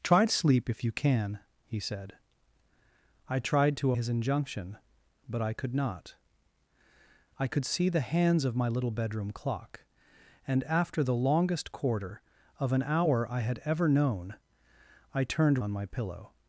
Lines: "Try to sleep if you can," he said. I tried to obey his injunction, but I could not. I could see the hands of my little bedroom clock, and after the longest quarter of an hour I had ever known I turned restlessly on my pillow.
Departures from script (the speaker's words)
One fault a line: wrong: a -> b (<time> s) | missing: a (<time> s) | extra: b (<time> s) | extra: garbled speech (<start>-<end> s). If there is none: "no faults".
missing: obey (3.9 s)
missing: restlessly (15.6 s)